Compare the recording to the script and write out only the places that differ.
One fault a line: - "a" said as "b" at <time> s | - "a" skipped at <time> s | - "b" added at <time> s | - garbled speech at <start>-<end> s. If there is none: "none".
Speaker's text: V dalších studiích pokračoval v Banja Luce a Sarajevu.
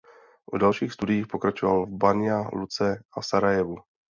none